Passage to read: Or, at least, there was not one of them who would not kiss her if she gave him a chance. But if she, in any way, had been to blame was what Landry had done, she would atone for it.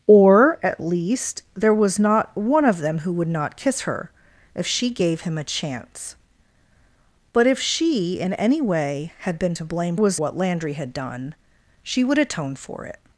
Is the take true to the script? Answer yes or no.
yes